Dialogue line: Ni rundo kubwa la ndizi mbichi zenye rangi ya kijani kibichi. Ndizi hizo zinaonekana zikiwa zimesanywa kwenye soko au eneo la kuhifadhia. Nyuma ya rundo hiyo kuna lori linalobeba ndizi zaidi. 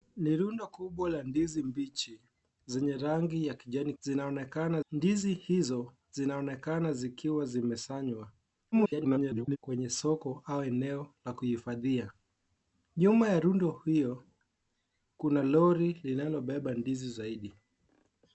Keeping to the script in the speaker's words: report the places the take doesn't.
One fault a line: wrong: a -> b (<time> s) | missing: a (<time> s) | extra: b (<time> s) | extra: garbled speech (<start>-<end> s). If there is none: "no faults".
wrong: kibichi -> zinaonekana (4.0 s)
extra: garbled speech (8.7-9.6 s)